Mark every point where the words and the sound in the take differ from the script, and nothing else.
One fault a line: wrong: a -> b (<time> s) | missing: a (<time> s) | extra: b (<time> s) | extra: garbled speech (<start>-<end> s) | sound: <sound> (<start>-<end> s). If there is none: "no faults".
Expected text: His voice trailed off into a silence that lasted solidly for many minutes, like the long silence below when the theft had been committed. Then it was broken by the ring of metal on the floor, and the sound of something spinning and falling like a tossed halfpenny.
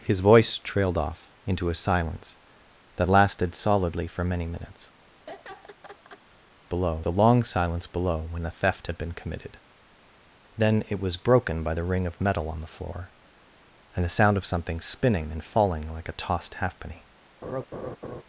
sound: laugh (5.3-6.2 s)
wrong: like -> below (6.6 s)
sound: laugh (17.4-18.2 s)